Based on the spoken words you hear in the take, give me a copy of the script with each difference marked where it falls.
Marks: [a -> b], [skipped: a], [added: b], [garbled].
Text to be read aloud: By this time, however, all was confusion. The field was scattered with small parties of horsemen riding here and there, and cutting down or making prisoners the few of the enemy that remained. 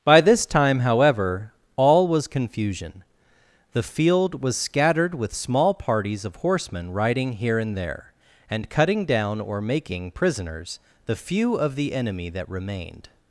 By this time, however, all was confusion. The field was scattered with small parties of horsemen riding here and there, and cutting down or making prisoners the few of the enemy that remained.